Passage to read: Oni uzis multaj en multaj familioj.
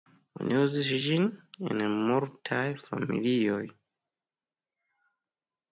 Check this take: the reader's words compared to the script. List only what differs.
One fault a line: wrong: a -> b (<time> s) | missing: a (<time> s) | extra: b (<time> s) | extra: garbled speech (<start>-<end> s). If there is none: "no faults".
wrong: multaj -> ĝin (1.0 s)